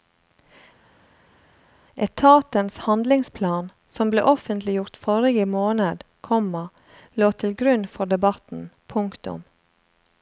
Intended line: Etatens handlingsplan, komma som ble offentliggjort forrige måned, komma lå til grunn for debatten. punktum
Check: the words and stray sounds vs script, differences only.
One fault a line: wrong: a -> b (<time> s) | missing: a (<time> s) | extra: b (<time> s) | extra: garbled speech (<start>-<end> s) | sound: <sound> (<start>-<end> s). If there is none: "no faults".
missing: komma (3.7 s)